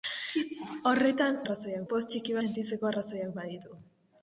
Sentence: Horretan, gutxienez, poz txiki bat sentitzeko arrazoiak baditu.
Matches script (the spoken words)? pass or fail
fail